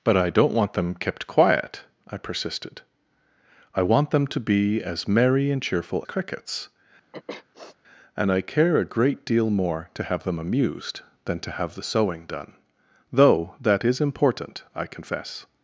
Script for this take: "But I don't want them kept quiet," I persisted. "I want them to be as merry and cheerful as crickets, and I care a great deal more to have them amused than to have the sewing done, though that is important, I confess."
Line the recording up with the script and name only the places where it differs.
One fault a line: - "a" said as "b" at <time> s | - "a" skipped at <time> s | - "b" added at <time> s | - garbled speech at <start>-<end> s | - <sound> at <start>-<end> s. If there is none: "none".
- "as" skipped at 6.0 s
- sniff at 7.1-7.8 s